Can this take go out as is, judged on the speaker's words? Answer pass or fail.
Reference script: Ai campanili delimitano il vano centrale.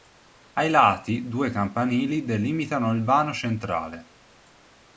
fail